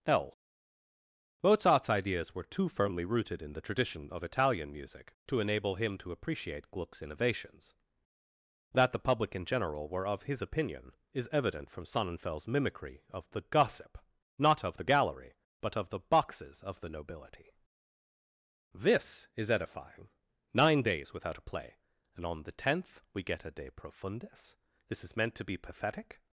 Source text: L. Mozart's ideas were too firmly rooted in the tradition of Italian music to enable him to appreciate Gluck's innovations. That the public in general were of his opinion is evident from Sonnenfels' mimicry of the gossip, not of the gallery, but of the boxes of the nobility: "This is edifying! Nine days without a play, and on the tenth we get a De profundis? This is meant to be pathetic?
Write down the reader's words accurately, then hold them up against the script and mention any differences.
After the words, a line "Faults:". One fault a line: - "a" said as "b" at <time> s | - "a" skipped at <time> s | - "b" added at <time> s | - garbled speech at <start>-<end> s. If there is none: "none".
L. Mozart's ideas were too firmly rooted in the tradition of Italian music to enable him to appreciate Gluck's innovations. That the public in general were of his opinion is evident from Sonnenfels' mimicry of the gossip, not of the gallery, but of the boxes of the nobility: "This is edifying! Nine days without a play, and on the tenth we get a De profundis? This is meant to be pathetic?
Faults:
none